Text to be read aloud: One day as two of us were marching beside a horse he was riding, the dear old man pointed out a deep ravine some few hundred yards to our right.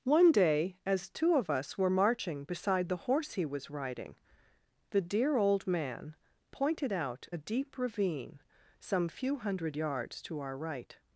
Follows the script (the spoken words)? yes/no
no